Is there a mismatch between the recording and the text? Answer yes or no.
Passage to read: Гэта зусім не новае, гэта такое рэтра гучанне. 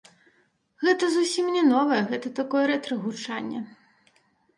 no